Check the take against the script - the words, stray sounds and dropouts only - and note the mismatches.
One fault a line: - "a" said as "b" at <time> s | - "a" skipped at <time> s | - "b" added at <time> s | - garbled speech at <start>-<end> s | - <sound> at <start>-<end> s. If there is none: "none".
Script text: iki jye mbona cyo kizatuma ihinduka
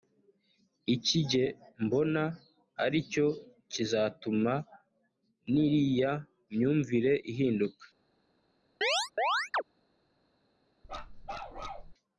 - "ari" added at 2.8 s
- "n'iriya myumvire" added at 5.5 s
- chirp at 8.8-9.6 s
- bark at 10.8-11.9 s